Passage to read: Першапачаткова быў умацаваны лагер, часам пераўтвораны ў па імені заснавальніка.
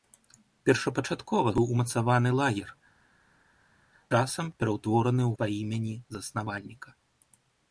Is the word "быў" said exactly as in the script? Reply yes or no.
yes